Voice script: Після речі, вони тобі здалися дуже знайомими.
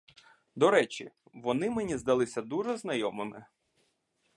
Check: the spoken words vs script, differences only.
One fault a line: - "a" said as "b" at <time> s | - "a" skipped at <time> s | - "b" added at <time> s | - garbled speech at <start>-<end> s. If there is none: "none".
- "Після" said as "До" at 0.6 s
- "тобі" said as "мені" at 1.7 s